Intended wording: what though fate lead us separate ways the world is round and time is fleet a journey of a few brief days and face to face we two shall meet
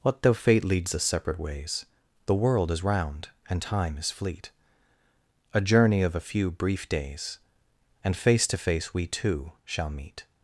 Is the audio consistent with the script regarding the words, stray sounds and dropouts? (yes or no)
no